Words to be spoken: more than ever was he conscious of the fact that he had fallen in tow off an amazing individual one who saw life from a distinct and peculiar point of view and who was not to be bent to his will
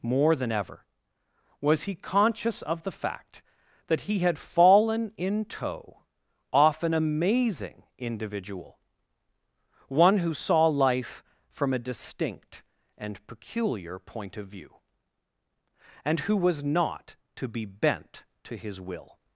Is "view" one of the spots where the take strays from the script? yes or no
no